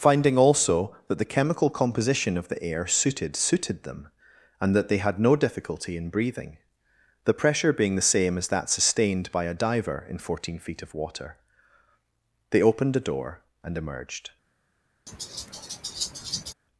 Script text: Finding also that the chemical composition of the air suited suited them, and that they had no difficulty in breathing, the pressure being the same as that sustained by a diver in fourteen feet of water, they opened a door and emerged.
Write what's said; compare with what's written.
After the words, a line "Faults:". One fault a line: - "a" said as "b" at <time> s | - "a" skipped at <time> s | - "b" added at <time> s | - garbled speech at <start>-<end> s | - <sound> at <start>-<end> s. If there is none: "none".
Finding also that the chemical composition of the air suited suited them, and that they had no difficulty in breathing, the pressure being the same as that sustained by a diver in fourteen feet of water, they opened a door and emerged.
Faults:
- laugh at 15.1-16.5 s